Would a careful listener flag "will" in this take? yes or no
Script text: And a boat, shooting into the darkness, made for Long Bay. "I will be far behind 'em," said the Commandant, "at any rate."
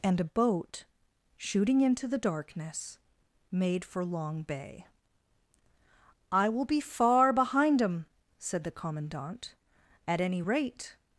no